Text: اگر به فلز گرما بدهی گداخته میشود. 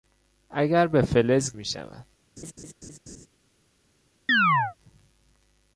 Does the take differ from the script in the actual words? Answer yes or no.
yes